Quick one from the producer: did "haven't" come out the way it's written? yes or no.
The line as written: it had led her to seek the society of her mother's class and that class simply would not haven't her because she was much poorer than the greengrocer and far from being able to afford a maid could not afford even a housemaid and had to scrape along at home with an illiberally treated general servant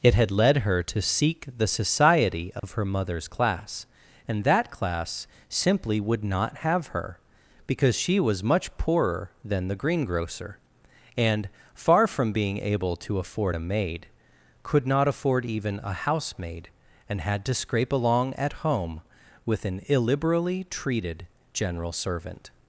no